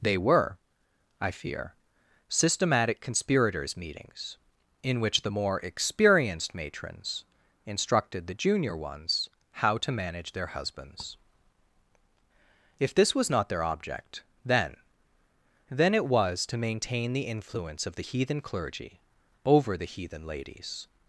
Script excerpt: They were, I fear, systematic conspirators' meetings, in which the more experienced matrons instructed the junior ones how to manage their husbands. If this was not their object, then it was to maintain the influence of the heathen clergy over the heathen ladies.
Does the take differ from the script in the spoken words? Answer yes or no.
yes